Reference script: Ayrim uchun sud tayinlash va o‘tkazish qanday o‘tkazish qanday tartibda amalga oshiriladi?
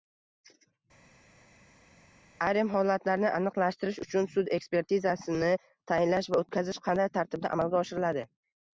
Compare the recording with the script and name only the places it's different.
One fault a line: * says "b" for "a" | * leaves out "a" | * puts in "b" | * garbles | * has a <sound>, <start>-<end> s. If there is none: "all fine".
* puts in "holatlarni aniqlashtirish"
* puts in "ekspertizasini"
* leaves out "o‘tkazish qanday"